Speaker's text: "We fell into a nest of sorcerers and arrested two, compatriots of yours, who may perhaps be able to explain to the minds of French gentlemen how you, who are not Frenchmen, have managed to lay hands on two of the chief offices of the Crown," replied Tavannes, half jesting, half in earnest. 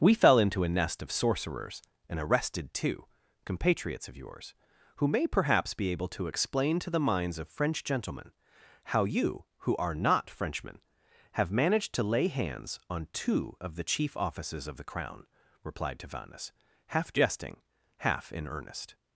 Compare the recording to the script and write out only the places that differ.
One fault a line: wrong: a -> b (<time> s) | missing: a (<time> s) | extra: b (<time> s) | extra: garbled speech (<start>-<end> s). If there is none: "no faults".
no faults